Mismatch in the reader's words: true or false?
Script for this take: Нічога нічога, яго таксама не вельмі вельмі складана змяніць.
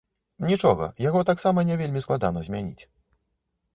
true